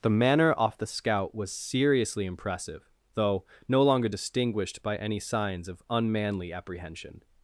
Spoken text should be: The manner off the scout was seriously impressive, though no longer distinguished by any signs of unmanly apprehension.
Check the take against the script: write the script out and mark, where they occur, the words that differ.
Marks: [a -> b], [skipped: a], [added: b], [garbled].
The manner off the scout was seriously impressive, though no longer distinguished by any signs of unmanly apprehension.